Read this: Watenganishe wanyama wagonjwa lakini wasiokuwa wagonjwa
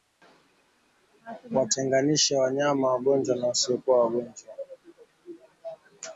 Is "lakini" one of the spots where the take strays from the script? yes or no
yes